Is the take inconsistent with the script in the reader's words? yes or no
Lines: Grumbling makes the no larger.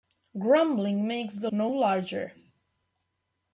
no